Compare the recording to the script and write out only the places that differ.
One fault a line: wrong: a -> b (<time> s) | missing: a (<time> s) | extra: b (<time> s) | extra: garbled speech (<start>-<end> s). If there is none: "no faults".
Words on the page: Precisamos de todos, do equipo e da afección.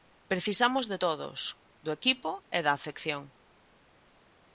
no faults